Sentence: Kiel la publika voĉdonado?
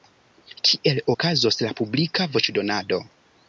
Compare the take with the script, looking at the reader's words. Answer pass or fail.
fail